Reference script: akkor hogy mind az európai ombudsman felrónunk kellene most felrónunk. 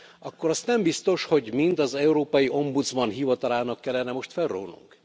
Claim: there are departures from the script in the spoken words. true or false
true